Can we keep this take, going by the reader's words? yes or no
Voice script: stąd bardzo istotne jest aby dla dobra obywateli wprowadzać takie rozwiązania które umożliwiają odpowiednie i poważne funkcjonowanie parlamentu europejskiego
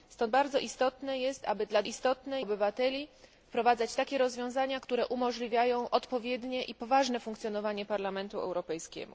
no